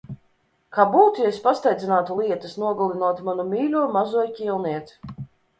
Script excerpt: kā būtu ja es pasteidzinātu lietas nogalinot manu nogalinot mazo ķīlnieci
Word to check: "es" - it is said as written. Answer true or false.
true